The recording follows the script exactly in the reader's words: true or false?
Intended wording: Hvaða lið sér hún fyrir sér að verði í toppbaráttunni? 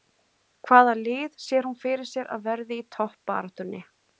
true